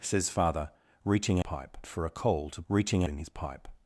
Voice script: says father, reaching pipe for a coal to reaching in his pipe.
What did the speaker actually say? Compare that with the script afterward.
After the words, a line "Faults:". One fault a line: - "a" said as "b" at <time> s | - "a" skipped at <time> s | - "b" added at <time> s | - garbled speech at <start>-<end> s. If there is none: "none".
says father, reaching pipe for a coal to reaching in his pipe.
Faults:
none